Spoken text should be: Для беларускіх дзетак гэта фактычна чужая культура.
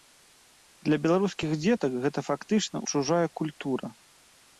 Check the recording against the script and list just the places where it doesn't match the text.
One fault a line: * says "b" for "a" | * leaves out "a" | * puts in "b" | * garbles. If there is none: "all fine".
all fine